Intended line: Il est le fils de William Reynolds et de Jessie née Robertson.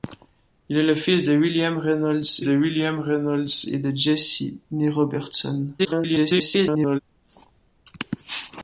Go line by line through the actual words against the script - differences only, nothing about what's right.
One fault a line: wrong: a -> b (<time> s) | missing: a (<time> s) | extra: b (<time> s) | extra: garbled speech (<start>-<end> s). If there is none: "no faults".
extra: de William Reynolds (2.4 s)
extra: garbled speech (5.8-7.0 s)